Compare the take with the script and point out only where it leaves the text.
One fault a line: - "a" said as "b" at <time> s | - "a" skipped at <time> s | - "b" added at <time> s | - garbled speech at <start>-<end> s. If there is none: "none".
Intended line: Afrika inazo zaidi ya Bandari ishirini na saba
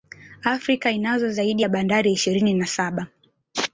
none